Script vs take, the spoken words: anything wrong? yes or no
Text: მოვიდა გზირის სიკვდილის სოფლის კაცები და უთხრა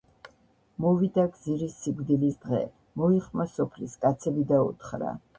yes